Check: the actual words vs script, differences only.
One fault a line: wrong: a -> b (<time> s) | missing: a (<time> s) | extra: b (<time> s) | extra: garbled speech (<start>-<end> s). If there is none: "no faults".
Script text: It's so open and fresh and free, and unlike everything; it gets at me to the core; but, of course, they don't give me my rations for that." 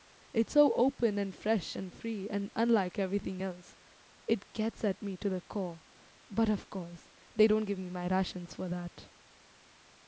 extra: else (3.4 s)